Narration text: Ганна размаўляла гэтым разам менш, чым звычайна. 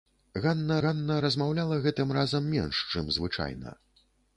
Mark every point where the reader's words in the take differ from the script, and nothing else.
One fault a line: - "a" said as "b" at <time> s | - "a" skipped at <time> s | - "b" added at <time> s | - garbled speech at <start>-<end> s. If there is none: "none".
- "ганна" added at 0.8 s